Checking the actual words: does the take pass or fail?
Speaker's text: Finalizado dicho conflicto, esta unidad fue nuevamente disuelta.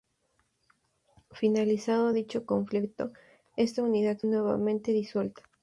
fail